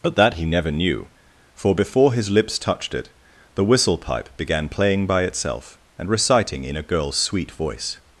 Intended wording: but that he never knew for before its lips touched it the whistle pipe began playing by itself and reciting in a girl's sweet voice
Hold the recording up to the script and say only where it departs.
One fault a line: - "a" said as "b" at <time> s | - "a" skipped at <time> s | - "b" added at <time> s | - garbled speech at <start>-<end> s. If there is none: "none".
- "its" said as "his" at 2.1 s